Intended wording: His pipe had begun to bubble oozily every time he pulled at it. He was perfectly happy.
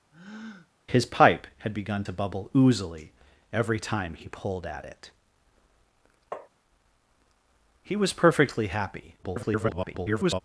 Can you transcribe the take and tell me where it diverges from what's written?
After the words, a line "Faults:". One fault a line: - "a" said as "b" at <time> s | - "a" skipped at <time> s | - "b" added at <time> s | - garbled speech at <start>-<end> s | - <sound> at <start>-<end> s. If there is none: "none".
His pipe had begun to bubble oozily every time he pulled at it. He was perfectly happy. [garbled]
Faults:
- breath at 0.1-0.7 s
- tap at 6.3-6.5 s
- garbled speech at 9.2-10.4 s